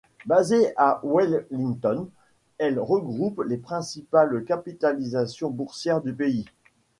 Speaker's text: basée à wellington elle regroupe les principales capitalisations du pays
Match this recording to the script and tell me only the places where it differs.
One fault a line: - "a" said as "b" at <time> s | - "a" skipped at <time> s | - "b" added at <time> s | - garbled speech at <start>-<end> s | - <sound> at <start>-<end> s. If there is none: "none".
- "boursières" added at 5.5 s